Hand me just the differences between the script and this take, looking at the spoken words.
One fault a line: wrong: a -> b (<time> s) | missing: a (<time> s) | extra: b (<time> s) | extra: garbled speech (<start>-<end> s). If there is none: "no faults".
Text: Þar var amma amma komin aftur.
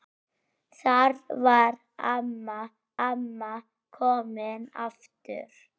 no faults